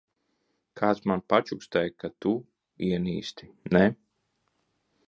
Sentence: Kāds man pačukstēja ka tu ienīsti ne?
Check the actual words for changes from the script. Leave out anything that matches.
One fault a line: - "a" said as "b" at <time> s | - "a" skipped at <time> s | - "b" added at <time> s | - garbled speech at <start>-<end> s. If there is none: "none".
none